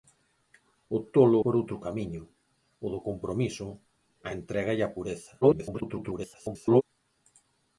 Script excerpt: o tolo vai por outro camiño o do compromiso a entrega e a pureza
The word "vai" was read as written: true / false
false